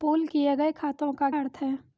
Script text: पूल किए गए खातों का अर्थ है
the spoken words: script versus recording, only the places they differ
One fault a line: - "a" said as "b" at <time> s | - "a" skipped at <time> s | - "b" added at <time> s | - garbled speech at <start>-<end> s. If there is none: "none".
none